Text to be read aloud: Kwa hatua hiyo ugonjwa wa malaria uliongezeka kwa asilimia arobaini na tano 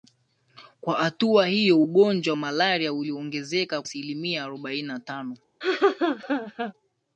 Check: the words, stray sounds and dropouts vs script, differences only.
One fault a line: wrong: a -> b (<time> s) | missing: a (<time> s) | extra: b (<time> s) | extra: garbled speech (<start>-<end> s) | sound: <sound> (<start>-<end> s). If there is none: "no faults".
missing: wa (2.4 s)
missing: kwa (3.8 s)
sound: laugh (5.6-6.7 s)